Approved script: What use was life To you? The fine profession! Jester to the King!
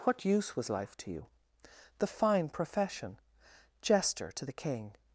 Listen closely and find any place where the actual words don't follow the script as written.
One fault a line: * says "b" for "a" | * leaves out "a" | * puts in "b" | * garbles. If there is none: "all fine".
all fine